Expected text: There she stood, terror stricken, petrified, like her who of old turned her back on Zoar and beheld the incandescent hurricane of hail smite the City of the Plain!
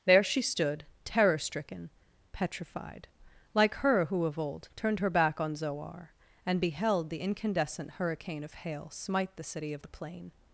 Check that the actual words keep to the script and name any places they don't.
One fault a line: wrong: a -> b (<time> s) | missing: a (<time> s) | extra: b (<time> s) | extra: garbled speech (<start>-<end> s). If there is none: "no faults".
no faults